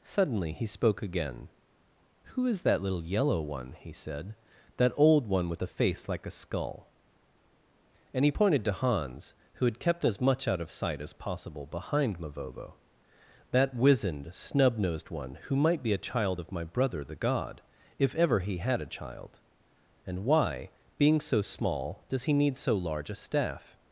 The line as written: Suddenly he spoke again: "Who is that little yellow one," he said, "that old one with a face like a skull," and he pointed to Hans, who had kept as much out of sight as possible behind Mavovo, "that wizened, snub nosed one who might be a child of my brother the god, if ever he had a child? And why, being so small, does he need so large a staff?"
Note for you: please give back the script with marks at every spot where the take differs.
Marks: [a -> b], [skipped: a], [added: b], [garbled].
Suddenly he spoke again: "Who is that little yellow one," he said, "that old one with [a -> the] face like a skull," and he pointed to Hans, who had kept as much out of sight as possible behind Mavovo, "that wizened, snub nosed one who might be a child of my brother the god, if ever he had a child? And why, being so small, does he need so large a staff?"